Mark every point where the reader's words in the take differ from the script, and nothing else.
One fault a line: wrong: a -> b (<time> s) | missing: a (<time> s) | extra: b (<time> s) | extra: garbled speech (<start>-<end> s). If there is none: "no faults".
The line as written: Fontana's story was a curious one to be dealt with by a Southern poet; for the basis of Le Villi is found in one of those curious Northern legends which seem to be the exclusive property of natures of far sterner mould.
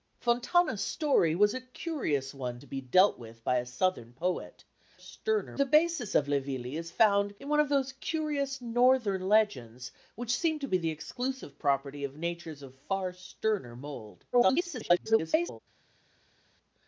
wrong: for -> sterner (4.9 s)
extra: garbled speech (14.3-15.6 s)